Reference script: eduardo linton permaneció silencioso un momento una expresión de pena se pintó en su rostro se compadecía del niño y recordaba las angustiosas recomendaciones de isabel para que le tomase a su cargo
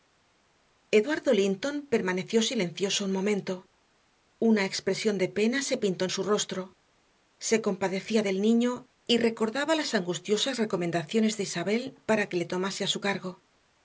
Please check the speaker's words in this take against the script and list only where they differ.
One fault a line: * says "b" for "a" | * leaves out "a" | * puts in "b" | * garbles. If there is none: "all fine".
all fine